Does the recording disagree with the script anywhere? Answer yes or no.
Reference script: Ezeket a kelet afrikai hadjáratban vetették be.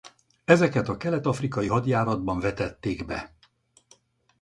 no